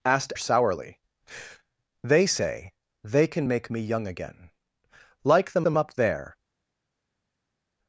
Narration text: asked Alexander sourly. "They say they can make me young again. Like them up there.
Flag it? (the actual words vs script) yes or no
yes